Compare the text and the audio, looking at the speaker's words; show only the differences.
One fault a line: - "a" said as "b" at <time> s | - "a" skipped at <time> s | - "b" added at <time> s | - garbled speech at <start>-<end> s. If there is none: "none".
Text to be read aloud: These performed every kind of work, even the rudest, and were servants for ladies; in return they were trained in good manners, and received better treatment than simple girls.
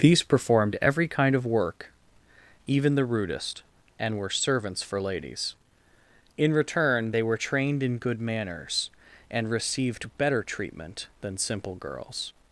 none